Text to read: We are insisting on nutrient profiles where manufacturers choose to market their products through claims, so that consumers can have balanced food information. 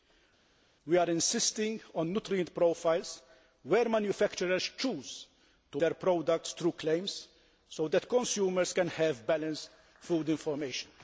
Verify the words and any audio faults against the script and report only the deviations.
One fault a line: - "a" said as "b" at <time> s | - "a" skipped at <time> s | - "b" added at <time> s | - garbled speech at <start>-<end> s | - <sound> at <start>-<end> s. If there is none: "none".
- "market" skipped at 5.8 s